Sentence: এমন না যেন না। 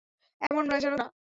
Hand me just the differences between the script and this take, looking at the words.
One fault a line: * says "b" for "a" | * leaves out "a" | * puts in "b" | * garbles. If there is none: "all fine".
all fine